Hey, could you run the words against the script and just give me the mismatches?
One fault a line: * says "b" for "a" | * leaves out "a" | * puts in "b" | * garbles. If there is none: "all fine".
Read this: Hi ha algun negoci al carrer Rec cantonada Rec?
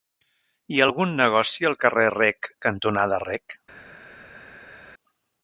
all fine